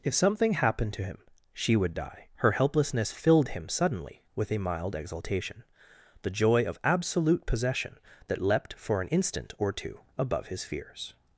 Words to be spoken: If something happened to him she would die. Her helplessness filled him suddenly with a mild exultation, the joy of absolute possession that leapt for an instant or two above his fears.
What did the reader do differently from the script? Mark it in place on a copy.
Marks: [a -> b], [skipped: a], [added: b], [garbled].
If something happened to him she would die. Her helplessness filled him suddenly with a mild exultation, the joy of absolute possession that leapt for an instant or two above his fears.